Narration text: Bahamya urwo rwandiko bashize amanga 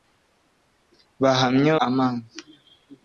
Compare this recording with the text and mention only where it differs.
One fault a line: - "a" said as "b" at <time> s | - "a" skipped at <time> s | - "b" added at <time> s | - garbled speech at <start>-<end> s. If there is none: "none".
- "urwo rwandiko bashize" skipped at 1.7 s